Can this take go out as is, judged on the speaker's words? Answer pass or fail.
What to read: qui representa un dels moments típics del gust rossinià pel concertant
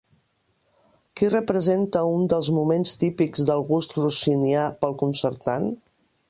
pass